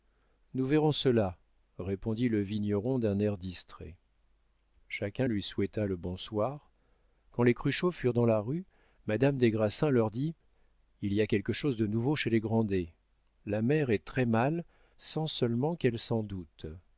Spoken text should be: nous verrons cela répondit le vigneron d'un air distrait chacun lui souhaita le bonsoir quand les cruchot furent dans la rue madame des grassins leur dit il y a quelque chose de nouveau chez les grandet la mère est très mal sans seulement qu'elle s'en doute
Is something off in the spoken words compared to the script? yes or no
no